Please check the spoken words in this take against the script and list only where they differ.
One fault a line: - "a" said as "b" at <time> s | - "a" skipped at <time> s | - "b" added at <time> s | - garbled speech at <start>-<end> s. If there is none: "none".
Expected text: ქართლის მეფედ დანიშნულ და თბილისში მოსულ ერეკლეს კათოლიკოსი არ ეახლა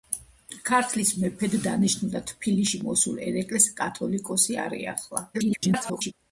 - garbled speech at 5.3-6.1 s